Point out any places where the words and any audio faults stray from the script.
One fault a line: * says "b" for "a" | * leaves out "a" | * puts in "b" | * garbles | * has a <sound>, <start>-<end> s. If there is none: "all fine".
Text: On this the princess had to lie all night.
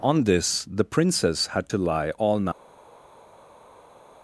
all fine